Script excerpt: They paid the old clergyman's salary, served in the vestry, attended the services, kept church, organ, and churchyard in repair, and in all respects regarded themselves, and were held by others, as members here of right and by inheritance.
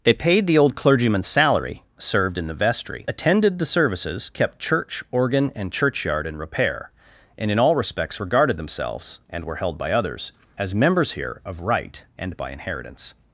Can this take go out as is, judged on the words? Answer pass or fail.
pass